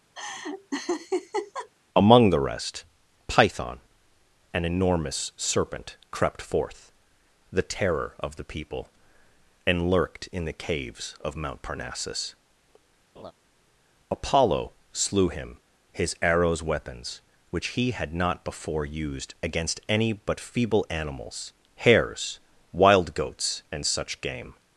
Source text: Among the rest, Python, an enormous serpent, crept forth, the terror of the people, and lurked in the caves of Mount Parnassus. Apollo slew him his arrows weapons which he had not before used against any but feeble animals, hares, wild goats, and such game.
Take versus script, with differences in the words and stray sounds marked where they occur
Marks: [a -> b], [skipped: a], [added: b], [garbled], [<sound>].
[laugh] Among the rest, Python, an enormous serpent, crept forth, the terror of the people, and lurked in the caves of Mount Parnassus. [laugh] Apollo slew him his arrows weapons which he had not before used against any but feeble animals, hares, wild goats, and such game.